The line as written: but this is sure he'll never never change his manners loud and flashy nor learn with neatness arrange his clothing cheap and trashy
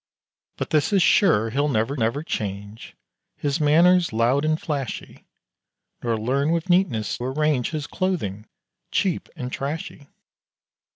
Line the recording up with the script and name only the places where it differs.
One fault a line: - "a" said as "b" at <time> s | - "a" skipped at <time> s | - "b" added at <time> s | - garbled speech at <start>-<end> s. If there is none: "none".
none